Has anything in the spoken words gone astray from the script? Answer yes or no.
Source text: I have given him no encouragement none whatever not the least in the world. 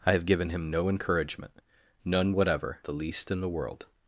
yes